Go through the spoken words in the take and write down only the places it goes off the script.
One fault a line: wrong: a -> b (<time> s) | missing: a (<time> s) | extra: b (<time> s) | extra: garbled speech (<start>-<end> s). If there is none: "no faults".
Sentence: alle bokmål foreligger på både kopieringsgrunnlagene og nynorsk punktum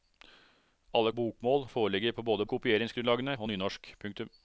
no faults